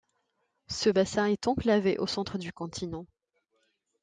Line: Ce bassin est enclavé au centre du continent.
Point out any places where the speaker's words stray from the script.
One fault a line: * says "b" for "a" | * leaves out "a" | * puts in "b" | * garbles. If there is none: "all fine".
all fine